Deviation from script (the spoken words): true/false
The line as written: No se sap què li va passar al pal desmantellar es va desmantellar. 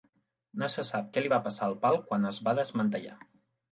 true